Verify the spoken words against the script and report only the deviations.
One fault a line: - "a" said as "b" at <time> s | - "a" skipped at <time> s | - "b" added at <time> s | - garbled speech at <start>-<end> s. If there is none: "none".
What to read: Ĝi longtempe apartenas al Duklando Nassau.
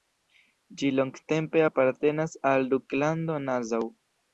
none